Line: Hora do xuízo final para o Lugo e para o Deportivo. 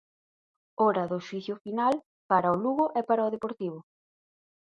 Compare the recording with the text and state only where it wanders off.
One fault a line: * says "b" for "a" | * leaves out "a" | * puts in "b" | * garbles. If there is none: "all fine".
all fine